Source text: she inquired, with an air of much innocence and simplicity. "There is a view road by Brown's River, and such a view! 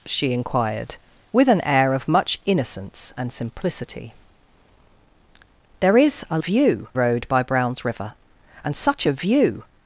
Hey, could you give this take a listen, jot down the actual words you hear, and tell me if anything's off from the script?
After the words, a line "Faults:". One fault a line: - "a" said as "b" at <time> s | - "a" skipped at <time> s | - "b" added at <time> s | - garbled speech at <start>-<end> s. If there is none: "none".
she inquired, with an air of much innocence and simplicity. "There is a view road by Brown's River, and such a view!
Faults:
none